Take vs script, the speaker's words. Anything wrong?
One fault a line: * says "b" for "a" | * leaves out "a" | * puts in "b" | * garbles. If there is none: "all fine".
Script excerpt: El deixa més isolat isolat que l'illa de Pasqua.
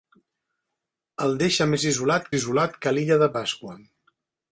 all fine